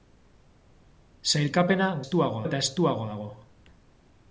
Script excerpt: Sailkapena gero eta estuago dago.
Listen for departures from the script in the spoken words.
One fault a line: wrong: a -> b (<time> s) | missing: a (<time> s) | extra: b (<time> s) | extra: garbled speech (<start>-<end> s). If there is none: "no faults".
wrong: gero -> estuago (2.0 s)